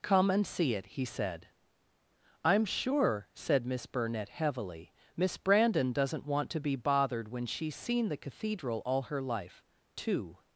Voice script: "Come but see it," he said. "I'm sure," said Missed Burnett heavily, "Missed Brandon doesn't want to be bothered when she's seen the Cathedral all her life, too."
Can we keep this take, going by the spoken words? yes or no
no